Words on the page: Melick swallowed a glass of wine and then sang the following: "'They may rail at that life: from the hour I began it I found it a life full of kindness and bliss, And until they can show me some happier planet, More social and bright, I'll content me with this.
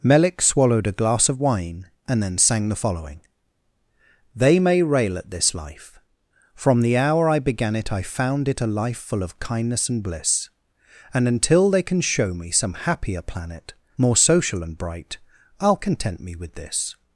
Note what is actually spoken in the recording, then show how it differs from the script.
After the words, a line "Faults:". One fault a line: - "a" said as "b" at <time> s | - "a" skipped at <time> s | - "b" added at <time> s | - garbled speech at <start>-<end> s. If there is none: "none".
Melick swallowed a glass of wine and then sang the following: "'They may rail at this life: from the hour I began it I found it a life full of kindness and bliss, And until they can show me some happier planet, More social and bright, I'll content me with this.
Faults:
- "that" said as "this" at 5.3 s